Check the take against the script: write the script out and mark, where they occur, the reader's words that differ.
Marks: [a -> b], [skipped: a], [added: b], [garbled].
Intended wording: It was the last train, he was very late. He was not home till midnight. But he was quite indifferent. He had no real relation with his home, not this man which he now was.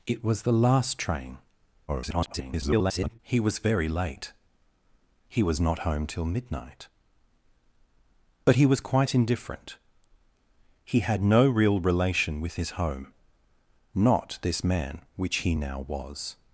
It was the last train, [garbled] he was very late. He was not home till midnight. But he was quite indifferent. He had no real relation with his home, not this man which he now was.